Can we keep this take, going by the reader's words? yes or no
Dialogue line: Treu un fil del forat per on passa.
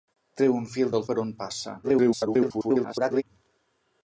no